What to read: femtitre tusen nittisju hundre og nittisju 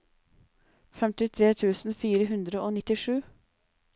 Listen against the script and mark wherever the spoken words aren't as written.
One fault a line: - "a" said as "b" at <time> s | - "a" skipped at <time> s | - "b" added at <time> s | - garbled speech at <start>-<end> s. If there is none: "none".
- "nittisju" said as "fire" at 2.0 s